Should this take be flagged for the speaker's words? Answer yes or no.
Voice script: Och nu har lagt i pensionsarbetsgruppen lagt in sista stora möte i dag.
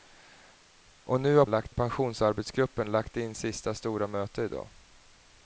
no